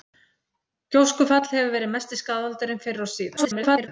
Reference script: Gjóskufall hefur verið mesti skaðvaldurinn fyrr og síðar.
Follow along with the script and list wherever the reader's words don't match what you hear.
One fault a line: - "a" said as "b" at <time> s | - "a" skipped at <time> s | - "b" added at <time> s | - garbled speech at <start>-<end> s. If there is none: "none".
- garbled speech at 3.4-3.9 s